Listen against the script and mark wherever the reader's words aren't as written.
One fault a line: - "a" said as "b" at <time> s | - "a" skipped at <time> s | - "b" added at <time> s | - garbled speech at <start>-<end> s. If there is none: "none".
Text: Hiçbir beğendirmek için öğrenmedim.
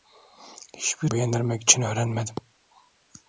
none